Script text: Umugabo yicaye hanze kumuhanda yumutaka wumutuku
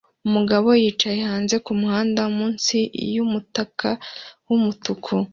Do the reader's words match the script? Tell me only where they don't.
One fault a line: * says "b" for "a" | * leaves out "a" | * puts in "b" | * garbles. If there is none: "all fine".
* puts in "munsi"